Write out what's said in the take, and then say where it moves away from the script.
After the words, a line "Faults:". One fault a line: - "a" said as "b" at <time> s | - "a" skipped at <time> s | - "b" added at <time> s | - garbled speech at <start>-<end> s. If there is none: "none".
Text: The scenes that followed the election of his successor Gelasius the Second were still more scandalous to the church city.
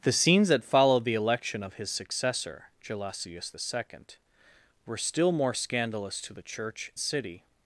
The scenes that followed the election of his successor Gelasius the Second were still more scandalous to the church city.
Faults:
none